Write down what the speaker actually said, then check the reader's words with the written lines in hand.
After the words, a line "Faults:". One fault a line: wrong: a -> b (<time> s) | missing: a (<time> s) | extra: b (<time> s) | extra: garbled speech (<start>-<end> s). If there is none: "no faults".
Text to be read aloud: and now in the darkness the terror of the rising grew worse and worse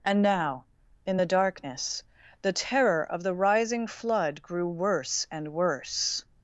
and now in the darkness the terror of the rising flood grew worse and worse
Faults:
extra: flood (3.9 s)